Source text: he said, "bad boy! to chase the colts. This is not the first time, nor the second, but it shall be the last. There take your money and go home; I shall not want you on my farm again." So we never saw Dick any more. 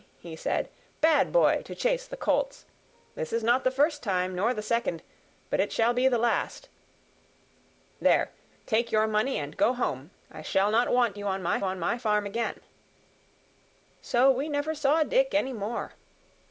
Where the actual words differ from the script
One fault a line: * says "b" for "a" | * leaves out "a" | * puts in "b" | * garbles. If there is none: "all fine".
* puts in "on my"